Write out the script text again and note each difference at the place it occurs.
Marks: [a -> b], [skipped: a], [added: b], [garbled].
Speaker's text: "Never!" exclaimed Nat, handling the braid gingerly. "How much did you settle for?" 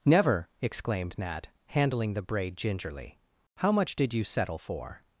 "Never!" exclaimed Nat, handling the braid gingerly. "How much did you settle for?"